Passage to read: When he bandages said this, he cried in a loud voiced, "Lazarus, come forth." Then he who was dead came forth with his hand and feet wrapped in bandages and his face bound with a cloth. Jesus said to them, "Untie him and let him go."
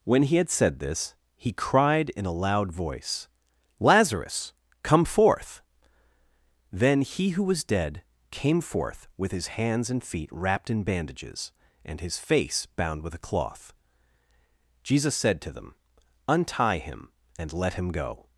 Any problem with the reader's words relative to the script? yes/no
yes